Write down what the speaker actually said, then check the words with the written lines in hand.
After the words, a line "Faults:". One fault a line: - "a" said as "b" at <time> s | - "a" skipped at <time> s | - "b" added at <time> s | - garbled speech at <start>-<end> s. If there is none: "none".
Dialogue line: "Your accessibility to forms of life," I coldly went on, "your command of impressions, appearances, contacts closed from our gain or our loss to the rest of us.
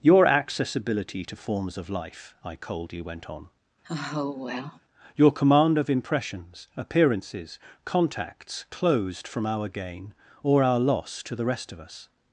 "Your accessibility to forms of life," I coldly went on, "your command of impressions, appearances, contacts closed from our gain or our loss to the rest of us.
Faults:
none